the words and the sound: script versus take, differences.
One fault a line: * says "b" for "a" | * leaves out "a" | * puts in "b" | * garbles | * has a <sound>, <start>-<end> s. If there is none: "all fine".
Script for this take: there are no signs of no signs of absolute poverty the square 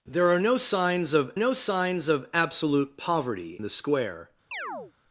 * has a chirp, 4.5-4.9 s